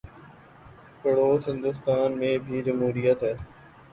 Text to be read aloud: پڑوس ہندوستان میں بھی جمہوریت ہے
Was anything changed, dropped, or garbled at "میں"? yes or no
no